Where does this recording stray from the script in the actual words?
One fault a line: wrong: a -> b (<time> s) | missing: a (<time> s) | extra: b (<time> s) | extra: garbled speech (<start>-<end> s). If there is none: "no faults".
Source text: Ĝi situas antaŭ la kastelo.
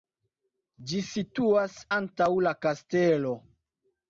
no faults